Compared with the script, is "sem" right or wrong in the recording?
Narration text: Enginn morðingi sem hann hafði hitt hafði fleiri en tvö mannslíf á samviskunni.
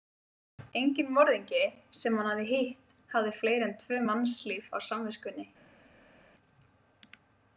right